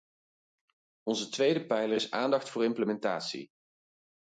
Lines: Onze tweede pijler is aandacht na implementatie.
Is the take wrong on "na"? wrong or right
wrong